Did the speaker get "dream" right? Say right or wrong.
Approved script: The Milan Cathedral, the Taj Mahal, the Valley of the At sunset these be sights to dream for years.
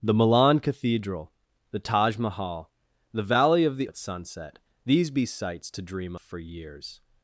right